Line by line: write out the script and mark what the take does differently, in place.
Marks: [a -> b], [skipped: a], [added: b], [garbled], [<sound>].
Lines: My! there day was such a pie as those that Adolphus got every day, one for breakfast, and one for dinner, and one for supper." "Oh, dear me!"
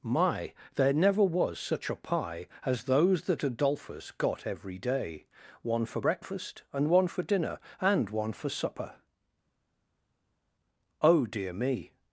My! there [day -> never] was such a pie as those that Adolphus got every day, one for breakfast, and one for dinner, and one for supper." "Oh, dear me!"